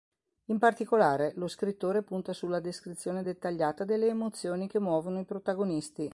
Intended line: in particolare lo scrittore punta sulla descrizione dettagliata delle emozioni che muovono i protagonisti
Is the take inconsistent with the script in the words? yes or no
no